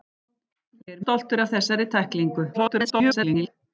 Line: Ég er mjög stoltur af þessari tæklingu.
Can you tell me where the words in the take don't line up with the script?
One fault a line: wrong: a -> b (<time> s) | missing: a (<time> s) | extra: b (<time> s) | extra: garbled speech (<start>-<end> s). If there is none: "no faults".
missing: mjög (1.0 s)
extra: garbled speech (2.5-3.5 s)